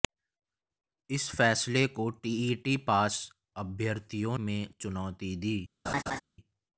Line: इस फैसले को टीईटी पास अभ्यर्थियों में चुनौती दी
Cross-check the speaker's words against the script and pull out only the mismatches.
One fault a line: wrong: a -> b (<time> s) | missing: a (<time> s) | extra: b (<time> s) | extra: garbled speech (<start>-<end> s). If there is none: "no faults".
no faults